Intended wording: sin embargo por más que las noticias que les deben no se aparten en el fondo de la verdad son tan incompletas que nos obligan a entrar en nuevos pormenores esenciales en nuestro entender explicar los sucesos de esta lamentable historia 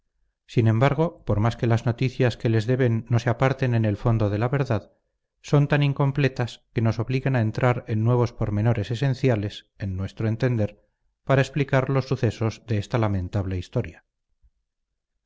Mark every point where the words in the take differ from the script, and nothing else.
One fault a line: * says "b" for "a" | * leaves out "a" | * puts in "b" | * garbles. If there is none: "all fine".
* puts in "para"